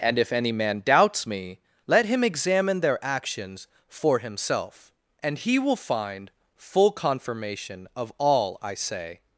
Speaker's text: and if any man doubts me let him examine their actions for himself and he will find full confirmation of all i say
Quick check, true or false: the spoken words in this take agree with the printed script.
true